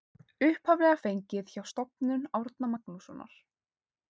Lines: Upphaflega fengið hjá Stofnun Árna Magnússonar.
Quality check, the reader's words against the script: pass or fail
pass